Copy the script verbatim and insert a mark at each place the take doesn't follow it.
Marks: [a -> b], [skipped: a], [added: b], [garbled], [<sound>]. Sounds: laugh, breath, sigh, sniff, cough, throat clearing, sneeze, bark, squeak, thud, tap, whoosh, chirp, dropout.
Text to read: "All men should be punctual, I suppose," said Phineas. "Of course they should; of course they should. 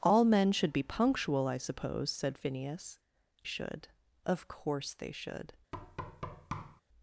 "All men should be punctual, I suppose," said Phineas. [skipped: "Of course they] should; of course they should. [thud]